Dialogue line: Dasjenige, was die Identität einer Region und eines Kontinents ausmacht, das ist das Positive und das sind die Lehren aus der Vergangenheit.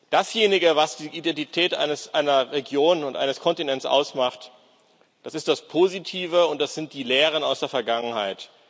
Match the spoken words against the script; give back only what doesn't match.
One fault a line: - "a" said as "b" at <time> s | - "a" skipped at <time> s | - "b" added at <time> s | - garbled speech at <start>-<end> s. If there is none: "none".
none